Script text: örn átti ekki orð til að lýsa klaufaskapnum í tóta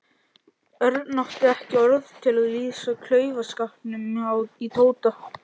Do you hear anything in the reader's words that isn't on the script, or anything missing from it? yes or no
no